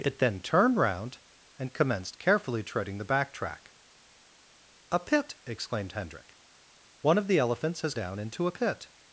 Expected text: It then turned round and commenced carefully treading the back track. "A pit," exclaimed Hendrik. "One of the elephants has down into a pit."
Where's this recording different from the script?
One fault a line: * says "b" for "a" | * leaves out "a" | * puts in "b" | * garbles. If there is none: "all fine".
all fine